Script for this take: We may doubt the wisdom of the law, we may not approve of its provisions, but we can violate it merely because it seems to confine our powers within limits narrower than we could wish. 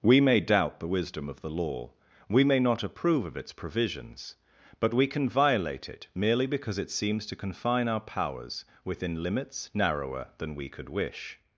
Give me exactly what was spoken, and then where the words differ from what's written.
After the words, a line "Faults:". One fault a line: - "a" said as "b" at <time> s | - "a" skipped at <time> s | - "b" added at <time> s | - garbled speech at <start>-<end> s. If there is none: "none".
We may doubt the wisdom of the law, we may not approve of its provisions, but we can violate it merely because it seems to confine our powers within limits narrower than we could wish.
Faults:
none